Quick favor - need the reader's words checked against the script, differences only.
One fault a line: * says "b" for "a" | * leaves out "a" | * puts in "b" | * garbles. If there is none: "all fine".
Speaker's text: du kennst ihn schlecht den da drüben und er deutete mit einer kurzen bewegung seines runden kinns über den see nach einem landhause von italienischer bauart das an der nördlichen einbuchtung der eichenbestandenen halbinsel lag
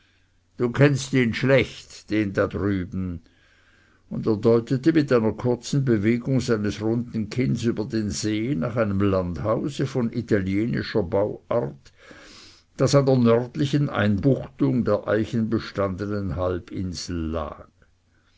all fine